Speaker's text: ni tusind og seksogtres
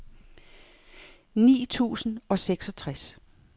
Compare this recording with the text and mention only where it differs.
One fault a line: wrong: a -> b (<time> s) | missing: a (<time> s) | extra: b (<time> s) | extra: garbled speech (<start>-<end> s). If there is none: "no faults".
no faults